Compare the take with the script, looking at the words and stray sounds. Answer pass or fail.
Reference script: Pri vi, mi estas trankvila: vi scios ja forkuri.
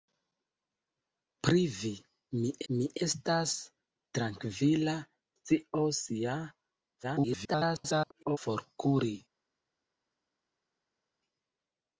fail